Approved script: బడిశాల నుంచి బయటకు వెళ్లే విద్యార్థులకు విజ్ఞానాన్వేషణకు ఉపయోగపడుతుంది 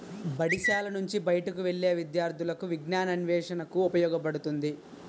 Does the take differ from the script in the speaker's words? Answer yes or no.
no